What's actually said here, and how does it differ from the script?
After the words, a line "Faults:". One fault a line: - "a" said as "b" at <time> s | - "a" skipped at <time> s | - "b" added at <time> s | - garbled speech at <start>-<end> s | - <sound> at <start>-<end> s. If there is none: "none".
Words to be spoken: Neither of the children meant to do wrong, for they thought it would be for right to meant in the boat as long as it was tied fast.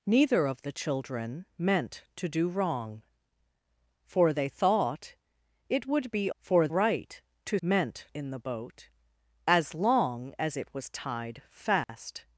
Neither of the children meant to do wrong, for they thought it would be for right to meant in the boat as long as it was tied fast.
Faults:
- dropout at 11.8-11.9 s